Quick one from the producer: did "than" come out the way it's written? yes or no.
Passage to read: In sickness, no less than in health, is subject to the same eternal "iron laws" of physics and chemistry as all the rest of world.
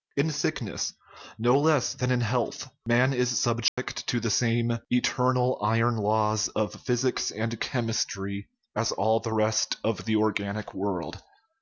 yes